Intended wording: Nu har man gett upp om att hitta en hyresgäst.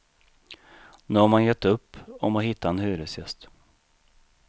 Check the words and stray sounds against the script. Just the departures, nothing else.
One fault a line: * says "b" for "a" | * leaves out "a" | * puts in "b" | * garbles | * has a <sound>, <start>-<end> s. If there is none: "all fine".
all fine